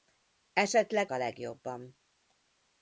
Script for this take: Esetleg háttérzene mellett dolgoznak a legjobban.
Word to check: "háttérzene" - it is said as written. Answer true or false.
false